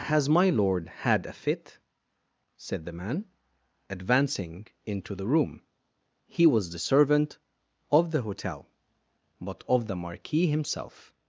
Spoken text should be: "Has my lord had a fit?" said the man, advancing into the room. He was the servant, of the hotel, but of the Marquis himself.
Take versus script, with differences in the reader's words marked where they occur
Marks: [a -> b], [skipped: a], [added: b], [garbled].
"Has my lord had a fit?" said the man, advancing into the room. He was the servant, of the hotel, but of the Marquis himself.